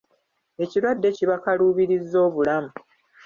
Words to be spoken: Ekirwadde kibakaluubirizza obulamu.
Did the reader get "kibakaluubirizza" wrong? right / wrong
right